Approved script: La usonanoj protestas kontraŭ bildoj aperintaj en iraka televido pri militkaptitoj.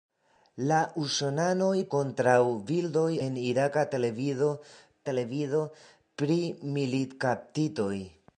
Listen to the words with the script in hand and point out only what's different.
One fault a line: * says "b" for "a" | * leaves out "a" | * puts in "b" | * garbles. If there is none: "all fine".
* leaves out "protestas"
* leaves out "aperintaj"
* puts in "televido"